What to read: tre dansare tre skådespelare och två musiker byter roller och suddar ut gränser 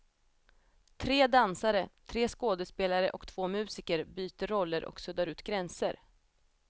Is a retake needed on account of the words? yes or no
no